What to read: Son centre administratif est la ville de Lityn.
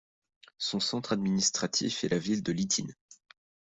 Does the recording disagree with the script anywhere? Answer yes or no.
no